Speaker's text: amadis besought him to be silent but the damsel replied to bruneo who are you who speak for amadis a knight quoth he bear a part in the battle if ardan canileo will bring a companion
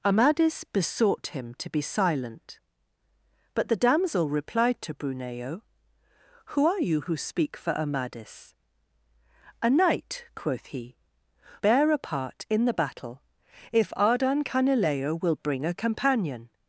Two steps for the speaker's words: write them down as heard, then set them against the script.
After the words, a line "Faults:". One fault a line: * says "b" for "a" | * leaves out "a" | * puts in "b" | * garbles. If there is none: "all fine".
amadis besought him to be silent but the damsel replied to bruneo who are you who speak for amadis a knight quoth he bear a part in the battle if ardan canileo will bring a companion
Faults:
all fine